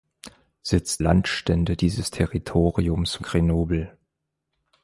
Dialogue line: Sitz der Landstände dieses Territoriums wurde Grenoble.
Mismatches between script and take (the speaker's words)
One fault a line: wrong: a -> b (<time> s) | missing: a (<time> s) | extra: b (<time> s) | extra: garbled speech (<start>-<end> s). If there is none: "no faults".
missing: der (1.0 s)
missing: wurde (3.2 s)